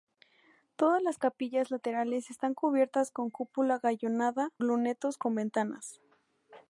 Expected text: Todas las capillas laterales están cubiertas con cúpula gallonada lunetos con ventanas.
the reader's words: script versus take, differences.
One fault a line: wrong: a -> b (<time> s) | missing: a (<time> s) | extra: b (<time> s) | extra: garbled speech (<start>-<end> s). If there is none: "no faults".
no faults